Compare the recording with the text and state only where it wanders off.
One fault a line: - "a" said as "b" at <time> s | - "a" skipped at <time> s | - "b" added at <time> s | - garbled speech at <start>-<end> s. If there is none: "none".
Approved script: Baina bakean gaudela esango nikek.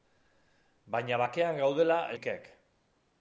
- "esango" skipped at 2.0 s